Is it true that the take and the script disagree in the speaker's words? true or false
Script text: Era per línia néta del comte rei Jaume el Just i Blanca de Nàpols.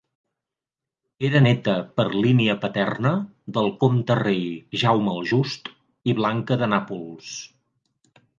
true